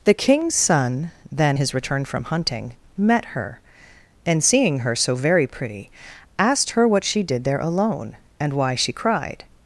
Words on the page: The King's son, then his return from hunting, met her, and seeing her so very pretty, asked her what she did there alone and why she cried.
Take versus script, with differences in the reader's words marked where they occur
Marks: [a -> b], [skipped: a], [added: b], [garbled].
The King's son, then his return from hunting, met her, and seeing her so very pretty, asked her what she did there alone and why she cried.